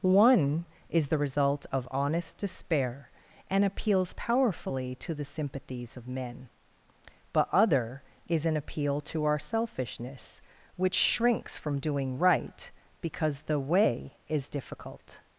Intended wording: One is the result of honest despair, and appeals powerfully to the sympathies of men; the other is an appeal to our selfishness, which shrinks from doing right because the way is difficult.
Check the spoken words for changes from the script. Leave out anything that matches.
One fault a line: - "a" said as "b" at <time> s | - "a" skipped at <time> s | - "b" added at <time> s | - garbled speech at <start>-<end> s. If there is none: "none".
- "the" said as "but" at 7.3 s